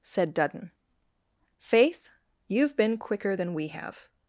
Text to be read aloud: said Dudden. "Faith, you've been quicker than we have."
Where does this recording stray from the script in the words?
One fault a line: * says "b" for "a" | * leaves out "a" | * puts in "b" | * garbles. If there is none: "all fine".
all fine